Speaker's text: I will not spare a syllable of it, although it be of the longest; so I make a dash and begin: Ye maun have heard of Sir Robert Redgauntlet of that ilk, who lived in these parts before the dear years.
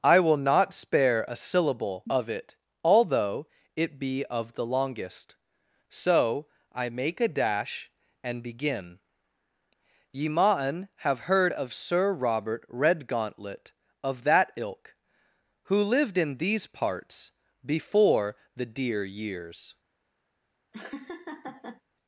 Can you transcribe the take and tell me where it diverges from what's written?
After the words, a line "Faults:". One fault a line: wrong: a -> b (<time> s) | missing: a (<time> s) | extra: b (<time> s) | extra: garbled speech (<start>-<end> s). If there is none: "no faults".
I will not spare a syllable of it, although it be of the longest; so I make a dash and begin: Ye maun have heard of Sir Robert Redgauntlet of that ilk, who lived in these parts before the dear years.
Faults:
no faults